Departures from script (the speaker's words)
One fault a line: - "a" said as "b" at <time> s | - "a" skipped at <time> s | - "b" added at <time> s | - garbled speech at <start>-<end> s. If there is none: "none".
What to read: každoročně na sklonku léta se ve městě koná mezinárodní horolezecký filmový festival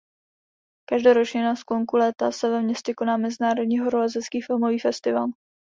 none